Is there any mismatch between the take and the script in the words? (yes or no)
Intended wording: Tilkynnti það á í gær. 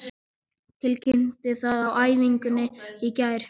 yes